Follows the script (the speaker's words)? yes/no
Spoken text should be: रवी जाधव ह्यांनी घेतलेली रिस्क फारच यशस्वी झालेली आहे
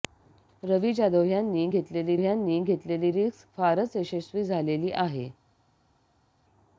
no